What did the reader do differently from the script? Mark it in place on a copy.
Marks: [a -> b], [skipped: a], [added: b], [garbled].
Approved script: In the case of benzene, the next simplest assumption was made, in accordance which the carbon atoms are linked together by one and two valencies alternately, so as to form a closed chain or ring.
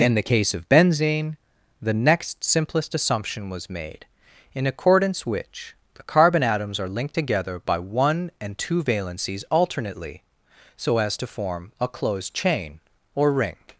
In the case of benzene, the next simplest assumption was made, in accordance which the carbon atoms are linked together by one and two valencies alternately, so as to form a closed chain or ring.